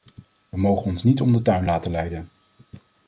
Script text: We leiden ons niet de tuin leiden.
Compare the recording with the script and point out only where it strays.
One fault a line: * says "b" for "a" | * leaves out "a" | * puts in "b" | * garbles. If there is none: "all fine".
* says "mogen" for "leiden"
* puts in "om"
* puts in "laten"